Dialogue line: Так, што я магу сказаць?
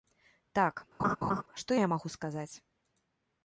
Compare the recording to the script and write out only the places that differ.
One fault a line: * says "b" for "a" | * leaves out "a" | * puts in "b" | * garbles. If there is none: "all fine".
all fine